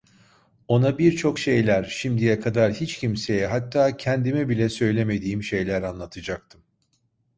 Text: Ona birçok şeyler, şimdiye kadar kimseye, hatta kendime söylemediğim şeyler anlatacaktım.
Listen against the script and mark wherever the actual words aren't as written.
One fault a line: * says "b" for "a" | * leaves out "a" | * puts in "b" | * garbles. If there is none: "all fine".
* puts in "hiç"
* puts in "bile"